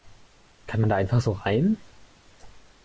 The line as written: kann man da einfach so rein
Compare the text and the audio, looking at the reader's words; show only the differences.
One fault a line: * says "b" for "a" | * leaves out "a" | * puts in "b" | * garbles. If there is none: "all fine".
all fine